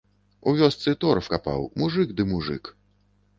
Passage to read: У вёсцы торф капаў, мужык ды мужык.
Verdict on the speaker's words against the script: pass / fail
pass